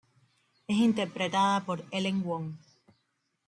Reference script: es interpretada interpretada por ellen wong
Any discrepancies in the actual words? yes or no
yes